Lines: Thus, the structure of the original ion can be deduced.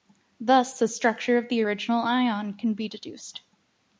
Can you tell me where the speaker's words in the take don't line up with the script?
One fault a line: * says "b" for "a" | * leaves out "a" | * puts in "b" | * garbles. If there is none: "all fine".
all fine